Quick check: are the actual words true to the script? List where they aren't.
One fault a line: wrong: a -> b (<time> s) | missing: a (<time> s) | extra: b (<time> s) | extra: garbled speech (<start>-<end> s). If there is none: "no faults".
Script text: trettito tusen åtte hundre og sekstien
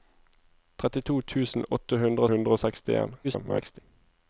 extra: hundre (2.3 s)
extra: garbled speech (3.2-3.8 s)